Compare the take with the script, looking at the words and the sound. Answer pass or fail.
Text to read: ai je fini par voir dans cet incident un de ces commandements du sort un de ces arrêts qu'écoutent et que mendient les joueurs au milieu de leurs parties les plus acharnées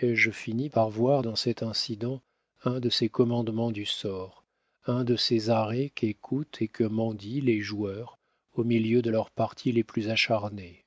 pass